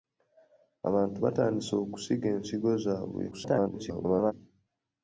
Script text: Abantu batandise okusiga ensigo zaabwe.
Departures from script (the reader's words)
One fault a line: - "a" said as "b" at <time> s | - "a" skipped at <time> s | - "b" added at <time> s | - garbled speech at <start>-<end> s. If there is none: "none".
- garbled speech at 3.3-4.3 s